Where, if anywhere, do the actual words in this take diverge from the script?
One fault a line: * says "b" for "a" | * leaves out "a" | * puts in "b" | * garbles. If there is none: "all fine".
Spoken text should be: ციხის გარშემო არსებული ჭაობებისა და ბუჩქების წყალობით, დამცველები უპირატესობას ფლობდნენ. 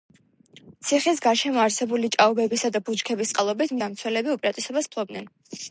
all fine